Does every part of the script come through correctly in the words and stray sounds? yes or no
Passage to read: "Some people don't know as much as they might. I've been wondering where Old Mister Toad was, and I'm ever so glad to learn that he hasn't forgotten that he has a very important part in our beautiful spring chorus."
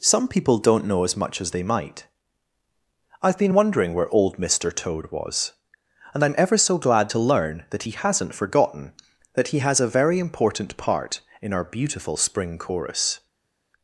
yes